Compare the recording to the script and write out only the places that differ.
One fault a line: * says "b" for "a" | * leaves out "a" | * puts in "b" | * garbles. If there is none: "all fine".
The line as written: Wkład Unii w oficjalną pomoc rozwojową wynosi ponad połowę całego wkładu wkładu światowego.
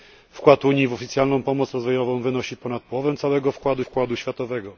all fine